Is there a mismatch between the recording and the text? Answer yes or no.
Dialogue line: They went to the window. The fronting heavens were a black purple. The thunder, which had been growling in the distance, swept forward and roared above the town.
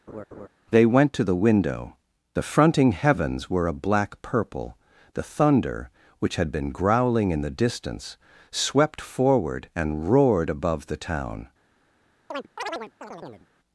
no